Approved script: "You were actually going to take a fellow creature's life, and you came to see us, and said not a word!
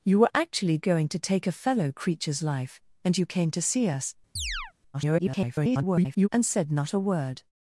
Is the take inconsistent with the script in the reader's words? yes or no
yes